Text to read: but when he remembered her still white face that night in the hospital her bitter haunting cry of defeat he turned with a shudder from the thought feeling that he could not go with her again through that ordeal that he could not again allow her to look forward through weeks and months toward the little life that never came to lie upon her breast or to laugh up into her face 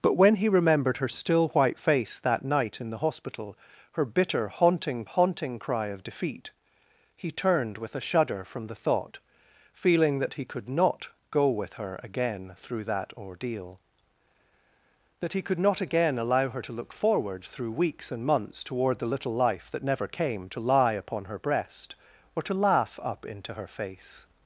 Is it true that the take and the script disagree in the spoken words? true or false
true